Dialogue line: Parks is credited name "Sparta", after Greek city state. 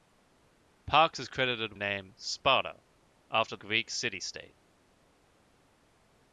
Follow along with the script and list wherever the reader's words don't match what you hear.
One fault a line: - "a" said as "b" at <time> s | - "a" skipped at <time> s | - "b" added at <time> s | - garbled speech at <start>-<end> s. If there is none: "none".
none